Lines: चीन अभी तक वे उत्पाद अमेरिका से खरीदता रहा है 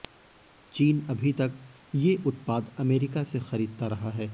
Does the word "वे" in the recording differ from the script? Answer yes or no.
yes